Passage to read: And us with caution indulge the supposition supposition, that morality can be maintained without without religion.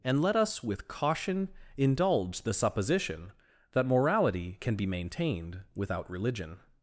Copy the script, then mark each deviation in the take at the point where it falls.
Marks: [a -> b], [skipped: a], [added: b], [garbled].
And [added: let] us with caution indulge the supposition [skipped: supposition,] that morality can be maintained without [skipped: without] religion.